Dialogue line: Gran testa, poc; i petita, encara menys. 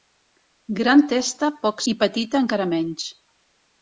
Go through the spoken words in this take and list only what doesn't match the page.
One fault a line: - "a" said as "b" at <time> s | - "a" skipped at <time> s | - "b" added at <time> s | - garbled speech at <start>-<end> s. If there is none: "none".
none